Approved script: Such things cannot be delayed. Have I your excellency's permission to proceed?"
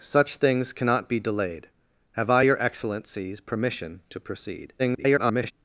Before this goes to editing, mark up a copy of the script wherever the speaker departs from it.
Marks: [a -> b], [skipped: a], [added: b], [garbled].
Such things cannot be delayed. Have I your excellency's permission to proceed?" [garbled]